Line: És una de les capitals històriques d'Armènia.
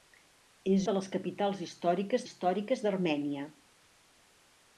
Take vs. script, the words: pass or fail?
fail